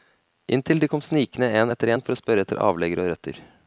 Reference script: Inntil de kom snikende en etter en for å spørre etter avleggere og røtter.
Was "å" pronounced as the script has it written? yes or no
yes